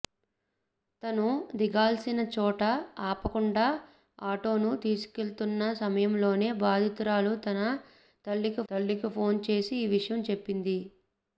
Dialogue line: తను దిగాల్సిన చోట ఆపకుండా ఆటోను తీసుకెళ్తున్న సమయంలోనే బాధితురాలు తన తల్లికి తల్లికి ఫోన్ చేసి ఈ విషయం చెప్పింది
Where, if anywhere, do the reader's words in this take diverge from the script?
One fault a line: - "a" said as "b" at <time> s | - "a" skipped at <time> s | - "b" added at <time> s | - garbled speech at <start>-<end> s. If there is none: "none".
none